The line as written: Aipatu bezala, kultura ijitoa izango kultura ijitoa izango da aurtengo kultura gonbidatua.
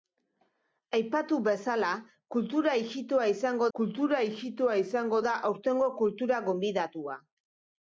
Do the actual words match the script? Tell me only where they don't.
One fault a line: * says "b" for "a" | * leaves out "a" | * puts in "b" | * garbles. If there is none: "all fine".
all fine